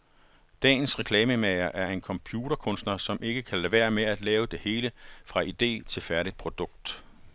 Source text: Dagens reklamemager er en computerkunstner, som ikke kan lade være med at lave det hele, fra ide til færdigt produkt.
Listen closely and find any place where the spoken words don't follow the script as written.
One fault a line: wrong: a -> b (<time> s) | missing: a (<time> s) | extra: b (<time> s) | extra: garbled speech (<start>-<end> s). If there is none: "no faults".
no faults